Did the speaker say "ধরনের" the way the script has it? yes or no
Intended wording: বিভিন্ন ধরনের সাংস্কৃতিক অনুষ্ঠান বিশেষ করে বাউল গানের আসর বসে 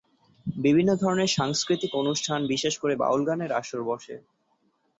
yes